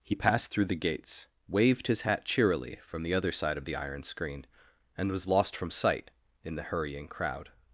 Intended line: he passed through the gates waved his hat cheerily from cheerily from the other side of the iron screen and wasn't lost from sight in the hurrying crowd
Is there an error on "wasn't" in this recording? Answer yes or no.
yes